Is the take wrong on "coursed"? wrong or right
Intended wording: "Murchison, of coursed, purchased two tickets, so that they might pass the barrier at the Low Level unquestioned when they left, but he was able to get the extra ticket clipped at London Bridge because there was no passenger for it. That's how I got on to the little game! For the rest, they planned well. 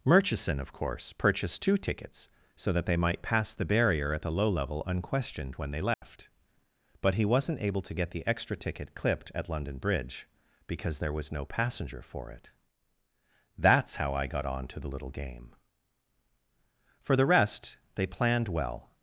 wrong